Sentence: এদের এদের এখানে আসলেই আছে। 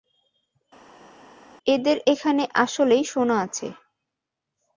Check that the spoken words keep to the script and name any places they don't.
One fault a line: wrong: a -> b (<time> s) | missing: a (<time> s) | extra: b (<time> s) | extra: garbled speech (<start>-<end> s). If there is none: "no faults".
missing: এদের (2.0 s)
extra: সোনা (3.0 s)